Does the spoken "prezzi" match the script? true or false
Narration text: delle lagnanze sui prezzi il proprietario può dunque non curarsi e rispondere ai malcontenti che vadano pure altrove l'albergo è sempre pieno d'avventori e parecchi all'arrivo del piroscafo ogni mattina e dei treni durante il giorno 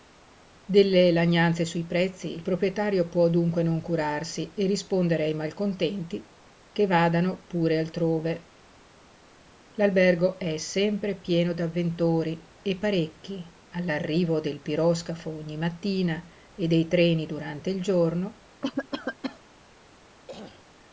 true